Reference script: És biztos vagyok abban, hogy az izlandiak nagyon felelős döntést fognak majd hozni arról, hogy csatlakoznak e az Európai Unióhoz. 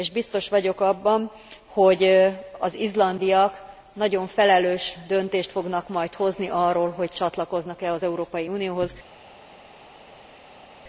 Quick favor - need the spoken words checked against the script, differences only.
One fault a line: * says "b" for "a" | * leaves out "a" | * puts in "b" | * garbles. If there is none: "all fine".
all fine